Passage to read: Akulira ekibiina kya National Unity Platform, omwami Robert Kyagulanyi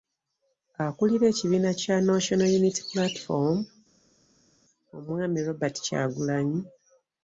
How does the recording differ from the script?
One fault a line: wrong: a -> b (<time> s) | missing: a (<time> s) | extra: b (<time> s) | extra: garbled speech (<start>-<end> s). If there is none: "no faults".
no faults